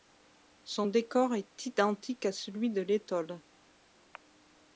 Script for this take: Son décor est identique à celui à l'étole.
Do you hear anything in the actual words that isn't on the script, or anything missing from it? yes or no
yes